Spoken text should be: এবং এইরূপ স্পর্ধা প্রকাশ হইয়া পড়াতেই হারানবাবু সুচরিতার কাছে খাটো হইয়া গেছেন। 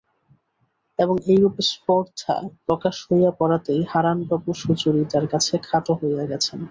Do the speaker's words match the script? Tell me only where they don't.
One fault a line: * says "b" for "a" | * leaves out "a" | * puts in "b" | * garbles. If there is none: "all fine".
all fine